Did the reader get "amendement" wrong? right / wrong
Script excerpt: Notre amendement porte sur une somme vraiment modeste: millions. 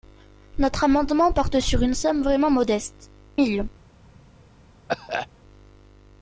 right